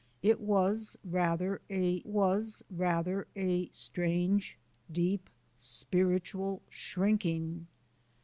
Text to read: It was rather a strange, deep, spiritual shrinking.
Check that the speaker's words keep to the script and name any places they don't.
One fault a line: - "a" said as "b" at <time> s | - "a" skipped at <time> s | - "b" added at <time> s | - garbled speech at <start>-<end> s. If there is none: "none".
- "was rather a" added at 2.1 s